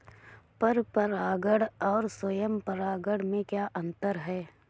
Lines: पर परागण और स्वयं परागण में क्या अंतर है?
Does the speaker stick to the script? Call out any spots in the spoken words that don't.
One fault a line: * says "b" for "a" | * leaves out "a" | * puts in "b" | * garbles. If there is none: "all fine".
all fine